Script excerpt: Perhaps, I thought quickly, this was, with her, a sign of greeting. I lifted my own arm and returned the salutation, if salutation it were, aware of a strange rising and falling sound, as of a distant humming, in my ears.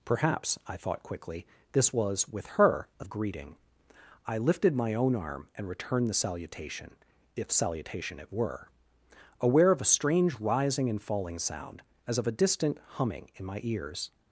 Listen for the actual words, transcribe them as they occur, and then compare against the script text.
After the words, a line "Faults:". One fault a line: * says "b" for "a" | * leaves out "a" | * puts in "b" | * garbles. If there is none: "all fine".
Perhaps, I thought quickly, this was, with her, a of greeting. I lifted my own arm and returned the salutation, if salutation it were, aware of a strange rising and falling sound, as of a distant humming, in my ears.
Faults:
* leaves out "sign"